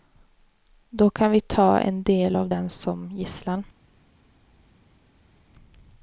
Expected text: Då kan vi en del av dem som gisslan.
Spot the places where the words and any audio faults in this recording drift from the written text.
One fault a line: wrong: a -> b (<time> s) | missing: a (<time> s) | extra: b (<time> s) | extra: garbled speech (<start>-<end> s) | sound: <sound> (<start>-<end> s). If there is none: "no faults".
extra: ta (1.4 s)